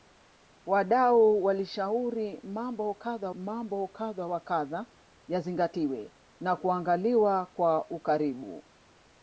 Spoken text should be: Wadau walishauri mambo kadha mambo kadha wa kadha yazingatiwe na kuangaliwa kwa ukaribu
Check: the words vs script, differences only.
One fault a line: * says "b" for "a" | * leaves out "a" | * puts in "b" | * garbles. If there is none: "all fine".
all fine